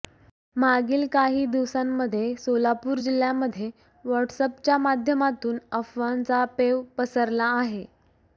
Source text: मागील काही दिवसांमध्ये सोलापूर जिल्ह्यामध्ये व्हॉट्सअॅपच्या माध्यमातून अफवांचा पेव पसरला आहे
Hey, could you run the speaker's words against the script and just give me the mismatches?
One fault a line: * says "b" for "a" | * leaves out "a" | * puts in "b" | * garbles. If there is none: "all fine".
all fine